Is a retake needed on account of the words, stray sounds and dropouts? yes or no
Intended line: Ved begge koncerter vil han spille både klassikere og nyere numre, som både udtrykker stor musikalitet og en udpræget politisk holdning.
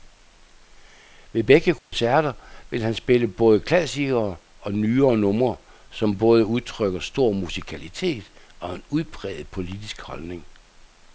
yes